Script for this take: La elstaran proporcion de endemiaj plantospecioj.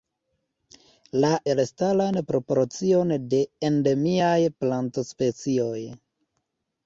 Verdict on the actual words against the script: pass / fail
pass